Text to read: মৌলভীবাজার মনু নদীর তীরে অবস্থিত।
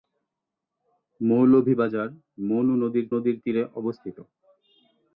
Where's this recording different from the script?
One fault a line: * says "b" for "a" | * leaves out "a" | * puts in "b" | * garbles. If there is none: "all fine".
* puts in "নদীর"